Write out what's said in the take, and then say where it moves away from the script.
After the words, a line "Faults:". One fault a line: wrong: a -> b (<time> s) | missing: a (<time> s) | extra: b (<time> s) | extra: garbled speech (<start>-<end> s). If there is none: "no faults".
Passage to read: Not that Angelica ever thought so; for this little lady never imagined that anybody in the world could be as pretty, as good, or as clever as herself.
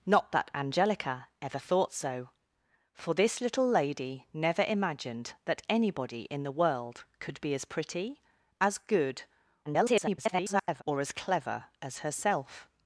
Not that Angelica ever thought so; for this little lady never imagined that anybody in the world could be as pretty, as good, [garbled] or as clever as herself.
Faults:
extra: garbled speech (9.7-10.8 s)